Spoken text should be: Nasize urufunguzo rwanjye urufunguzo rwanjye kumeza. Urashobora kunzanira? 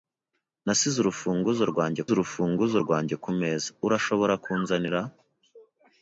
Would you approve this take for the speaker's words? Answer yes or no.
yes